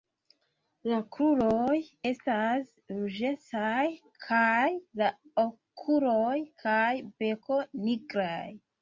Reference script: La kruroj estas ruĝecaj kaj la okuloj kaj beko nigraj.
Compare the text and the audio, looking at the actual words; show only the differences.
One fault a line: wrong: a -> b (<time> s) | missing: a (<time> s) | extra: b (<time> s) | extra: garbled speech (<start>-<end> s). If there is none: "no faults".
no faults